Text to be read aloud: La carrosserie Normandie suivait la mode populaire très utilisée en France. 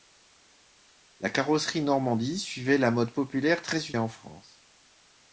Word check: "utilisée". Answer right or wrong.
wrong